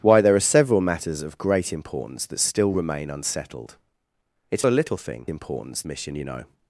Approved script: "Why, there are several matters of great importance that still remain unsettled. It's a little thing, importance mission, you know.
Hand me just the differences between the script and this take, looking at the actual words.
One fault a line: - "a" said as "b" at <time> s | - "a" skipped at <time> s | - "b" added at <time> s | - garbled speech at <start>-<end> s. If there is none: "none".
none